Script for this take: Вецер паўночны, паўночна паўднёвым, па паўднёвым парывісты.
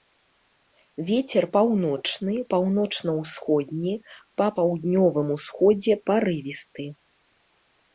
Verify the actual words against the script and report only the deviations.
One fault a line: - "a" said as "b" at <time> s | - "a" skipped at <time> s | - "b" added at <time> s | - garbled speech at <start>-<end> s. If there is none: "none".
- "паўднёвым" said as "ўсходні" at 3.2 s
- "усходзе" added at 5.4 s